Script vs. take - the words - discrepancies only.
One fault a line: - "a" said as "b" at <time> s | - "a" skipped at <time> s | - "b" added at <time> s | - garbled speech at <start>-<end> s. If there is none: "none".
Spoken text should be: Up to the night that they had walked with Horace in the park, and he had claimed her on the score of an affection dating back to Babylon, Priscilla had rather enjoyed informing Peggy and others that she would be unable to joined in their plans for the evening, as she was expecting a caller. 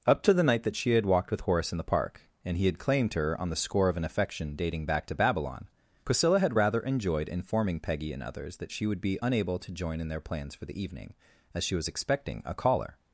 - "they" said as "she" at 0.8 s
- "joined" said as "join" at 9.7 s